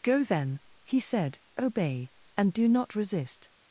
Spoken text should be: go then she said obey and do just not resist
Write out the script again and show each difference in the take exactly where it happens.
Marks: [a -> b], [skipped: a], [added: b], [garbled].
go then [she -> he] said obey and do [skipped: just] not resist